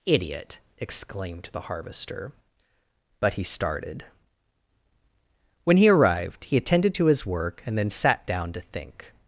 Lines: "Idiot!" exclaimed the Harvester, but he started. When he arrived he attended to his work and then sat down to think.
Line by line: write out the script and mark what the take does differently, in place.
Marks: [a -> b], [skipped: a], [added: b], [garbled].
"Idiot!" exclaimed the Harvester, but he started. When he arrived he attended to his work and then sat down to think.